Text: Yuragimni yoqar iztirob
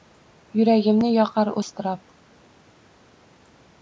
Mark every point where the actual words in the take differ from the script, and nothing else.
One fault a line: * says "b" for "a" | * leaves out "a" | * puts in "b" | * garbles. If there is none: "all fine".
all fine